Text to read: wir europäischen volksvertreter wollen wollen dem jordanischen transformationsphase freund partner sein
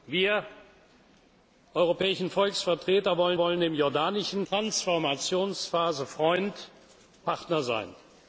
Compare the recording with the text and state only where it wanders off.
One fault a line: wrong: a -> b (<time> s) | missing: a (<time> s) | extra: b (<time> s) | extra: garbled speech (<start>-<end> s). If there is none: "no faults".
no faults